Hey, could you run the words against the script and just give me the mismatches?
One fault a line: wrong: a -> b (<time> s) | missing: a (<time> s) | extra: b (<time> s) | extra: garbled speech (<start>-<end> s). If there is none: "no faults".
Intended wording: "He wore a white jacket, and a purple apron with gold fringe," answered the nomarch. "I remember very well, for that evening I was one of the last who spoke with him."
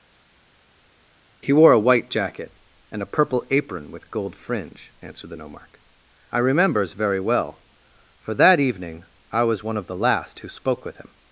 wrong: remember -> remembers (6.4 s)